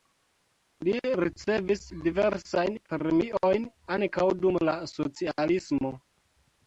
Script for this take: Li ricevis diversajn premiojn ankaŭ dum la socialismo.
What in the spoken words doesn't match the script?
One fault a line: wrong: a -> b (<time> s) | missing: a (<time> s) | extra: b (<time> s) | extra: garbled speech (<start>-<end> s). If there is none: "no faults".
no faults